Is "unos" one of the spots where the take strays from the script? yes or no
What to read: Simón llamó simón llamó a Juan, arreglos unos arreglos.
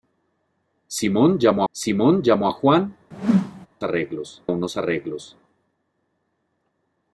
no